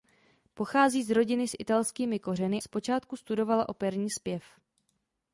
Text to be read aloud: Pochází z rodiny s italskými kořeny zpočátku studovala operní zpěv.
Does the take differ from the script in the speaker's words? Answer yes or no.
no